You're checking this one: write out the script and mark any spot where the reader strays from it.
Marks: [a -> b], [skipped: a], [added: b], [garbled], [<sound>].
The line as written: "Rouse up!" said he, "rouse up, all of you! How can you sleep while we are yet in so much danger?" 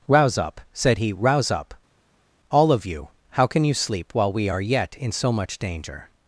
"Rouse up!" said he, "rouse up, all of you! How can you sleep while we are yet in so much danger?"